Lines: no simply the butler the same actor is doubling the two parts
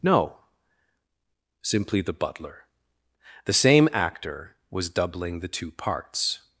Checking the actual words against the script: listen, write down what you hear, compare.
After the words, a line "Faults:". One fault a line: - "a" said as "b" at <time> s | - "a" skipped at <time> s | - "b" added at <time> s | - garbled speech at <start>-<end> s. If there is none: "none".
no simply the butler the same actor was doubling the two parts
Faults:
- "is" said as "was" at 4.7 s